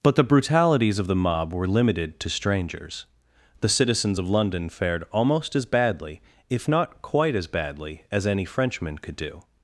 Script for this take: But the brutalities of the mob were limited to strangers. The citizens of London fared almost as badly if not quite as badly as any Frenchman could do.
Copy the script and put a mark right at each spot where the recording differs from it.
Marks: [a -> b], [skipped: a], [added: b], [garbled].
But the brutalities of the mob were limited to strangers. The citizens of London fared almost as badly if not quite as badly as any Frenchman could do.